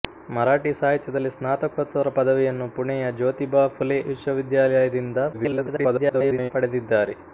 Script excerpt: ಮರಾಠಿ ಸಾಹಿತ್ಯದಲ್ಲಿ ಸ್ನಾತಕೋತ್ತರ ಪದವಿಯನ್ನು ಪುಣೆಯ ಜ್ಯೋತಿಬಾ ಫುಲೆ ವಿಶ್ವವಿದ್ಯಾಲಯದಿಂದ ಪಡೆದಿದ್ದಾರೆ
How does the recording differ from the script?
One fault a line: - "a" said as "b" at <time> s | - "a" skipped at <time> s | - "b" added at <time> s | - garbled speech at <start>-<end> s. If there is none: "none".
- garbled speech at 5.3-6.5 s